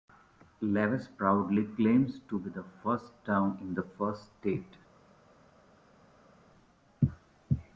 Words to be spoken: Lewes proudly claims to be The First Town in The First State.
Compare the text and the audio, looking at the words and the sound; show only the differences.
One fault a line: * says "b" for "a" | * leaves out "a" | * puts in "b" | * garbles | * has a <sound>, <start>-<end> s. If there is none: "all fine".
all fine